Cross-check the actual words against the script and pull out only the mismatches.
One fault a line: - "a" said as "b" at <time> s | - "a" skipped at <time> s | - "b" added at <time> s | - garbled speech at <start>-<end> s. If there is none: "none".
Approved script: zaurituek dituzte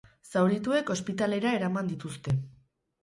- "ospitalera eraman" added at 0.9 s